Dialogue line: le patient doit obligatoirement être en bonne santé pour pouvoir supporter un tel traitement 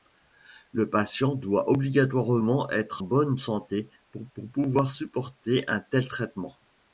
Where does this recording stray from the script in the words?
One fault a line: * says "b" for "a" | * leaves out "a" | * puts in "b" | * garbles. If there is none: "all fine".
* leaves out "en"
* puts in "pour"